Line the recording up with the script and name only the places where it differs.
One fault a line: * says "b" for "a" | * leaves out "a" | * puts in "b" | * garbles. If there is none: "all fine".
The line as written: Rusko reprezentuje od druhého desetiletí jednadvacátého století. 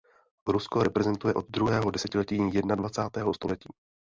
all fine